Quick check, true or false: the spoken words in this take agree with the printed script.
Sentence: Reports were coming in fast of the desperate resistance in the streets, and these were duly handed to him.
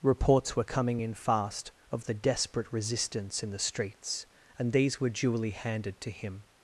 true